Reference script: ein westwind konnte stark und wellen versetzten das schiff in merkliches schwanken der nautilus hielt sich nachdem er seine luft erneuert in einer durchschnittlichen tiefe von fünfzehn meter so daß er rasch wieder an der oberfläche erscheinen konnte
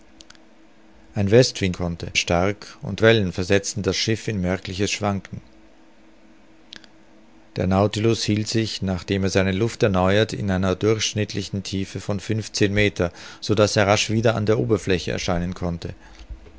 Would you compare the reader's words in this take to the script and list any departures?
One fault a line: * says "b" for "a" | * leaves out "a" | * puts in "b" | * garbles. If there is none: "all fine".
all fine